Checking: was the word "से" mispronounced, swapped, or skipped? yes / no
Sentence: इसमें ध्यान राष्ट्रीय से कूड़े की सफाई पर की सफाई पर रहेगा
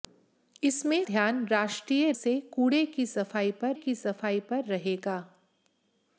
no